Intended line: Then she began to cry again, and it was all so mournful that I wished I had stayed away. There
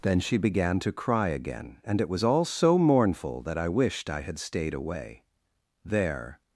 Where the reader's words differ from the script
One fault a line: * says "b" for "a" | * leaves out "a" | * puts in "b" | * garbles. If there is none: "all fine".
all fine